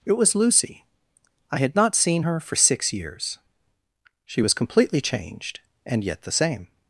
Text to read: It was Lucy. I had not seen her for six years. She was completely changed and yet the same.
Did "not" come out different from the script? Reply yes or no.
no